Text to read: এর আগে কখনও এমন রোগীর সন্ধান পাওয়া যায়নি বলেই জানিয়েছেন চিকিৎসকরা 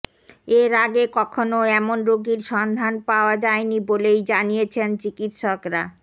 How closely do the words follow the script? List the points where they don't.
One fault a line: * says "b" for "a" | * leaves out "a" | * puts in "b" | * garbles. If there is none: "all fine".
all fine